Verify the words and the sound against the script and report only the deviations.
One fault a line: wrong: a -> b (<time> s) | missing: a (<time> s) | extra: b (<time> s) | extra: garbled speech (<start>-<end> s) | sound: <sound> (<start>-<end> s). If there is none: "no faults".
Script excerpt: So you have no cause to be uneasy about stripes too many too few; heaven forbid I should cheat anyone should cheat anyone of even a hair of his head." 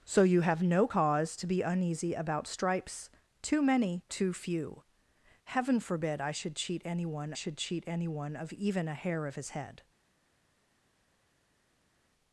no faults